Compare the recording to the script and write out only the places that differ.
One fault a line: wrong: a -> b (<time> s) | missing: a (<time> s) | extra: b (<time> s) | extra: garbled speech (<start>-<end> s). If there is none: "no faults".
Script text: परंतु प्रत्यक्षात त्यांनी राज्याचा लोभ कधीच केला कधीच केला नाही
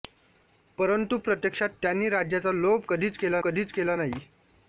no faults